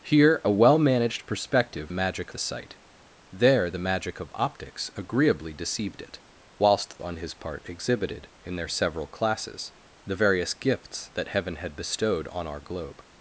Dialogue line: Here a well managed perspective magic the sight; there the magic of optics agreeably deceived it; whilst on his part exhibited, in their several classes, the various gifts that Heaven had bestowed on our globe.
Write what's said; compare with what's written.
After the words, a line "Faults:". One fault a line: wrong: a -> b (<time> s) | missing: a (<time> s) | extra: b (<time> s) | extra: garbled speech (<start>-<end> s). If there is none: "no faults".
Here a well managed perspective magic the sight; there the magic of optics agreeably deceived it; whilst on his part exhibited, in their several classes, the various gifts that Heaven had bestowed on our globe.
Faults:
no faults